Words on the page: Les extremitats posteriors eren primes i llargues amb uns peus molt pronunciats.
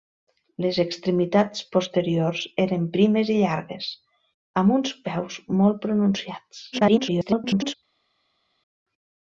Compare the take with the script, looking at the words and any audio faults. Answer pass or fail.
fail